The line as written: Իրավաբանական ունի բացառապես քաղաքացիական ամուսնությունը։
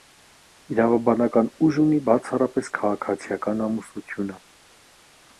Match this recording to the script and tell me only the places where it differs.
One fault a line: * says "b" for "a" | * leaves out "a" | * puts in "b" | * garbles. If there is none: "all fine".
* puts in "ուժ"